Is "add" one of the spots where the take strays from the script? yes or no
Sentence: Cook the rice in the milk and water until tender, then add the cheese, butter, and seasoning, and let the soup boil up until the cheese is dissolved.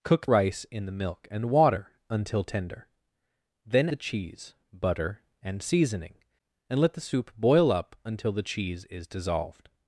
yes